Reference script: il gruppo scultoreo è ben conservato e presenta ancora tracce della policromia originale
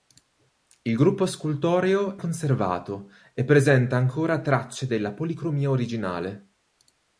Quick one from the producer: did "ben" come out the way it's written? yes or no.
no